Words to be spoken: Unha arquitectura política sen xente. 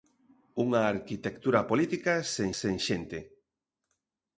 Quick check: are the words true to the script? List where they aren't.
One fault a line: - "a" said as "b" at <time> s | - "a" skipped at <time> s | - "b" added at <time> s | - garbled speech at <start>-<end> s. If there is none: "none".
- "sen" added at 2.6 s